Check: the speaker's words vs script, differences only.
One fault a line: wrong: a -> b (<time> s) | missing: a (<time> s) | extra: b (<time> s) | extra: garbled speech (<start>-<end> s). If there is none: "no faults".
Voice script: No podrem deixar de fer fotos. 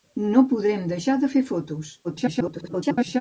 extra: garbled speech (2.0-3.2 s)